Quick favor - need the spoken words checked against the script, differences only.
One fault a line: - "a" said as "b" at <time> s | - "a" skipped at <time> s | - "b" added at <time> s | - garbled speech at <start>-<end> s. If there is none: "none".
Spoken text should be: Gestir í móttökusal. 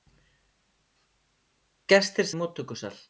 none